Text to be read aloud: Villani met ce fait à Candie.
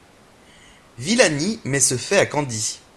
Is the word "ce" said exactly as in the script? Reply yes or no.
yes